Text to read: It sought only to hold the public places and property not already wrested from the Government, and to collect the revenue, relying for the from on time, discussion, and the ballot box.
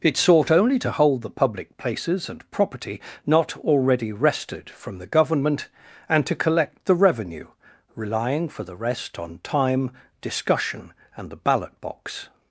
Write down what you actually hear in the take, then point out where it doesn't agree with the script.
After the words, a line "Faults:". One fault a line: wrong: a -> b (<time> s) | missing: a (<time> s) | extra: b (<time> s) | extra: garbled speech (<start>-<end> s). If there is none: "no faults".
It sought only to hold the public places and property not already wrested from the Government, and to collect the revenue, relying for the rest on time, discussion, and the ballot box.
Faults:
wrong: from -> rest (8.8 s)